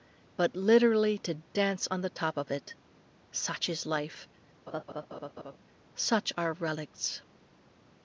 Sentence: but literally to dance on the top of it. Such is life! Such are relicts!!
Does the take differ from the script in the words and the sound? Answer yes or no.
yes